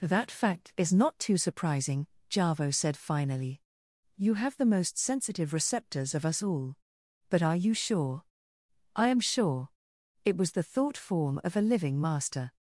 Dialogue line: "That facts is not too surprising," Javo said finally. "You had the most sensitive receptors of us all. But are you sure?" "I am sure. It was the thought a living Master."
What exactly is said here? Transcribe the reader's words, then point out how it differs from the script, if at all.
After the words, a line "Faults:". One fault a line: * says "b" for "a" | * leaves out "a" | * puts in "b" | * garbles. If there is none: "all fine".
"That fact is not too surprising," Javo said finally. "You have the most sensitive receptors of us all. But are you sure?" "I am sure. It was the thought form of a living Master."
Faults:
* says "fact" for "facts"
* says "have" for "had"
* puts in "form of"